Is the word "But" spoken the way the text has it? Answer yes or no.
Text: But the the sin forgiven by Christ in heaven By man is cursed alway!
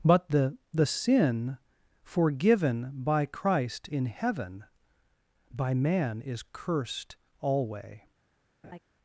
yes